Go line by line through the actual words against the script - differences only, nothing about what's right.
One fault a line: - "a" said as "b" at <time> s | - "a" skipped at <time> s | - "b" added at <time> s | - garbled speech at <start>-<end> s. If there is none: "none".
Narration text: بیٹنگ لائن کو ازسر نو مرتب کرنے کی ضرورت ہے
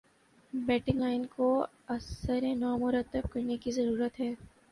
none